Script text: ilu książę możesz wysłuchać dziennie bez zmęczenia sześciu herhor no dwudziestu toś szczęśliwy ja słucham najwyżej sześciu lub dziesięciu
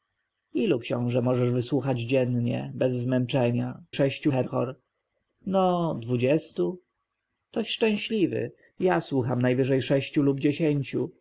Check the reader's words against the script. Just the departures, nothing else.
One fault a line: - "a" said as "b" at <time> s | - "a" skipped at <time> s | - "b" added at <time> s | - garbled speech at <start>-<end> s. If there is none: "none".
none